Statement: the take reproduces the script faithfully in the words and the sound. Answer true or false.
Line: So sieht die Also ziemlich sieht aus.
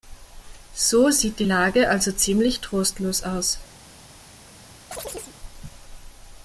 false